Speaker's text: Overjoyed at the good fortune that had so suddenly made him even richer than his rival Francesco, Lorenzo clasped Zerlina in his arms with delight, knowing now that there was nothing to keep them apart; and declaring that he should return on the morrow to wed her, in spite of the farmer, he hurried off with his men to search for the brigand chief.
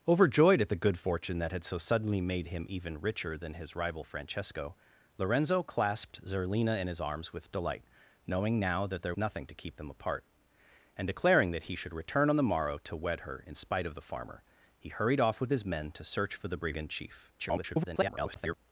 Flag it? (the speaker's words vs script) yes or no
yes